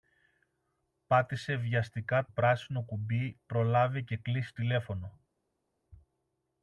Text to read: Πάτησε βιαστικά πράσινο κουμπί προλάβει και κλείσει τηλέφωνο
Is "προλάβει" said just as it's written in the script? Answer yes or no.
yes